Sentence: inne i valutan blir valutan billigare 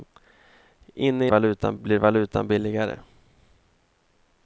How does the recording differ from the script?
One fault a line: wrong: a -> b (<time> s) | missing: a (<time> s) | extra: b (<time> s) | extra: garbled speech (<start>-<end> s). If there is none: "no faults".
no faults